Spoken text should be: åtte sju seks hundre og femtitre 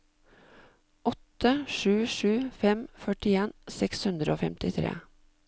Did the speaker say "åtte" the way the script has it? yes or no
yes